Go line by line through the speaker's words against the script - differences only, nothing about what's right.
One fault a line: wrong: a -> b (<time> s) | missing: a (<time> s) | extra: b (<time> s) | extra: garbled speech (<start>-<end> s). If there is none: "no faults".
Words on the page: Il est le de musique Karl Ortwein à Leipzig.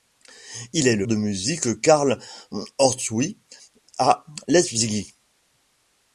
no faults